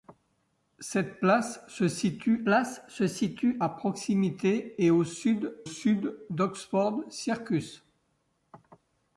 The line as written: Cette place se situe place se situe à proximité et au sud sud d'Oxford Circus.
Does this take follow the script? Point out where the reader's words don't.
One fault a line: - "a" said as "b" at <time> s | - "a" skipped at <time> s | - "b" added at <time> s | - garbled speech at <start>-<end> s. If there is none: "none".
none